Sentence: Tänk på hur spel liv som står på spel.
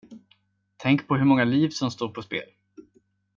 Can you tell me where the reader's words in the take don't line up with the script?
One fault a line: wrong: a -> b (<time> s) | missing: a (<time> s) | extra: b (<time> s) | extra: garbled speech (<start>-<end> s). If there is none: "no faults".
wrong: spel -> många (1.2 s)